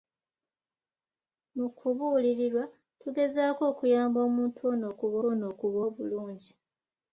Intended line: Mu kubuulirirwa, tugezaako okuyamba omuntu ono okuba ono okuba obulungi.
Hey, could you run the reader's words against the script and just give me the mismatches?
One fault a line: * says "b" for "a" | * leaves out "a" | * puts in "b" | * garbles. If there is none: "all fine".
all fine